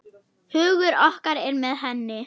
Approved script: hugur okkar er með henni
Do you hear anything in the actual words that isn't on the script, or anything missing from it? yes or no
no